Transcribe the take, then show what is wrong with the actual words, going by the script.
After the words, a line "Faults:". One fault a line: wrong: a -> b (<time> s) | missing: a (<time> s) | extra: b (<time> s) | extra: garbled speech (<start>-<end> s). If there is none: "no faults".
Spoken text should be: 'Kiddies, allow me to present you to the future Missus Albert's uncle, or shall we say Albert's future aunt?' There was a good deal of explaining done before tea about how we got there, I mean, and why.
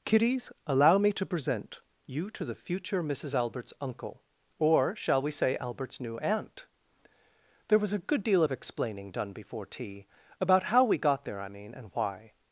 'Kiddies, allow me to present you to the future Missus Albert's uncle, or shall we say Albert's new aunt?' There was a good deal of explaining done before tea about how we got there, I mean, and why.
Faults:
wrong: future -> new (6.0 s)